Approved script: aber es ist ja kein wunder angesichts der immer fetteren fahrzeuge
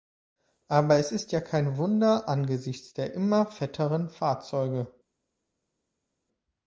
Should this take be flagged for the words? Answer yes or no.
no